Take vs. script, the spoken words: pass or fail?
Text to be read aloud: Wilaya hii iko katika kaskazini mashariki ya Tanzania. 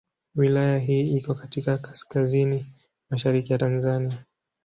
pass